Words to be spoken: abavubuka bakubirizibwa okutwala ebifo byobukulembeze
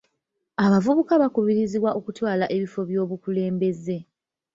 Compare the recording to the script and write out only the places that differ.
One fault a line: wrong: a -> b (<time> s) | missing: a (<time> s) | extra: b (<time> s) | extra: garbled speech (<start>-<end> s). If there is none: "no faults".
no faults